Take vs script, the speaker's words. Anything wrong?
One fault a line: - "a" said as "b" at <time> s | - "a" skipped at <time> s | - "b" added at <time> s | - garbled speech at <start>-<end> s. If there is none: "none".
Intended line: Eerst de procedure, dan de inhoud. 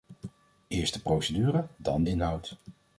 - "de" skipped at 2.0 s